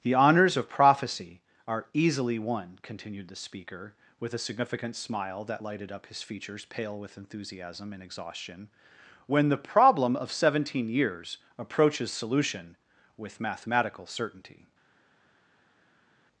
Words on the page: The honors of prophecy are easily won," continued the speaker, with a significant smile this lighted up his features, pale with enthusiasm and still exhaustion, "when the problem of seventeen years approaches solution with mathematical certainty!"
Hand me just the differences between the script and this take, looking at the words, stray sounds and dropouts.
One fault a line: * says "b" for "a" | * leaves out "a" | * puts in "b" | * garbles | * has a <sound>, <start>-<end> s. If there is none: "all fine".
* says "that" for "this"
* leaves out "still"